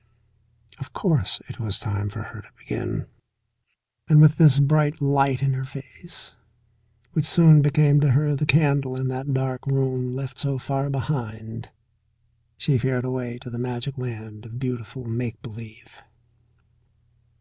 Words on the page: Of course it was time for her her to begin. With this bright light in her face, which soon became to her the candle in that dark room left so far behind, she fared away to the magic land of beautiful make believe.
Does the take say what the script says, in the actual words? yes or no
no